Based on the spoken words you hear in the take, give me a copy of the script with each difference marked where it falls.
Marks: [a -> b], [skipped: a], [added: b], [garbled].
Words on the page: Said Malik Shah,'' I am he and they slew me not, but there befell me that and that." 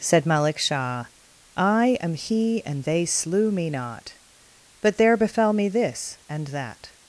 Said Malik Shah,'' I am he and they slew me not, but there befell me [that -> this] and that."